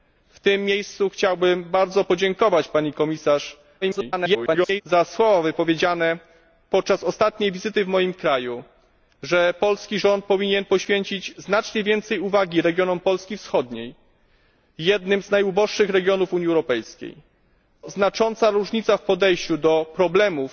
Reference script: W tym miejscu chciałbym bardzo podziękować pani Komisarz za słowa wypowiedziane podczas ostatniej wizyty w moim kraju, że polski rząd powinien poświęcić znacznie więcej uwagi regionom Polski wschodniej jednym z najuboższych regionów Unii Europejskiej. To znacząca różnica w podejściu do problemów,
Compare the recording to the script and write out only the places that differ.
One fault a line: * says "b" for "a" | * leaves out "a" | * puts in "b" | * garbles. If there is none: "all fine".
* garbles
* leaves out "To"